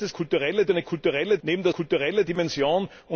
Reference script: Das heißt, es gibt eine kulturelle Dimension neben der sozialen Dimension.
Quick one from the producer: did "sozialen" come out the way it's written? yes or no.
no